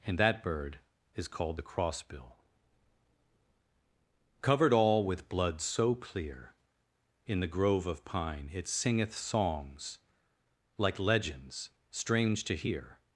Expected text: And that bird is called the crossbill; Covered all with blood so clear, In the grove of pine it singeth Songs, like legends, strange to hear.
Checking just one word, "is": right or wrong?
right